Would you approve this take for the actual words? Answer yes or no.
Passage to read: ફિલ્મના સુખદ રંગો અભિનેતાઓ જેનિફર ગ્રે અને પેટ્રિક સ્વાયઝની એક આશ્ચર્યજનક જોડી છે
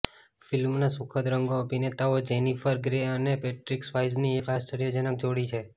yes